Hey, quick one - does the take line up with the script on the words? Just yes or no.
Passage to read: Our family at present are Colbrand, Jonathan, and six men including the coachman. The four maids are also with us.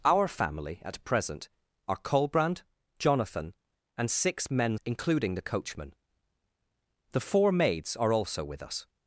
yes